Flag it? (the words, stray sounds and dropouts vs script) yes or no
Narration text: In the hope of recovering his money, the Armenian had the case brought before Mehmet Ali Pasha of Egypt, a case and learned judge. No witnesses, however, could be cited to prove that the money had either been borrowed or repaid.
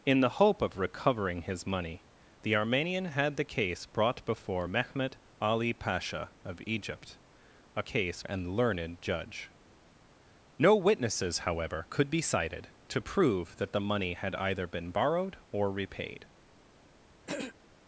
yes